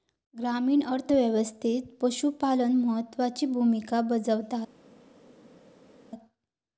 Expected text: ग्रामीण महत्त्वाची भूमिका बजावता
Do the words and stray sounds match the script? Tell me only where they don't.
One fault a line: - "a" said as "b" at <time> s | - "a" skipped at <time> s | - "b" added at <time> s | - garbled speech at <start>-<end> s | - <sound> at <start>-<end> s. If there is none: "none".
- "अर्थ व्यवस्थेत पशुपालन" added at 0.8 s